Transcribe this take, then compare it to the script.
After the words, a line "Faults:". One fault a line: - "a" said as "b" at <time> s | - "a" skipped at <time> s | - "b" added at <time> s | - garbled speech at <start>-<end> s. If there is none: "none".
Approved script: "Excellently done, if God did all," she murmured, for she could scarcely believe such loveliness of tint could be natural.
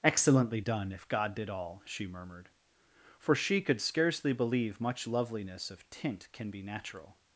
"Excellently done, if God did all," she murmured, for she could scarcely believe much loveliness of tint can be natural.
Faults:
- "such" said as "much" at 4.8 s
- "could" said as "can" at 6.3 s